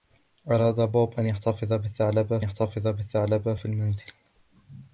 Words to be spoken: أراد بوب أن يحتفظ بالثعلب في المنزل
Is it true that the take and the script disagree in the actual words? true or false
true